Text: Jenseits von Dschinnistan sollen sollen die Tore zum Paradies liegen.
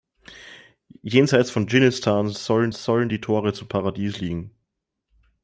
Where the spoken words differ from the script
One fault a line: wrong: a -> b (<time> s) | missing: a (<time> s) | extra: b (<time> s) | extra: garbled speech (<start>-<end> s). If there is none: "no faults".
no faults